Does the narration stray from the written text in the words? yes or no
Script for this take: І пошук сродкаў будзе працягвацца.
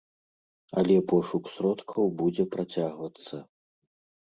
yes